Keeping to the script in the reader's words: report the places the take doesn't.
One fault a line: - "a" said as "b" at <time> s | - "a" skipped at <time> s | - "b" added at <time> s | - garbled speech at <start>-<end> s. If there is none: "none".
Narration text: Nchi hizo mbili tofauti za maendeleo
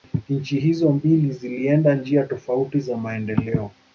- "zilienda njia" added at 1.3 s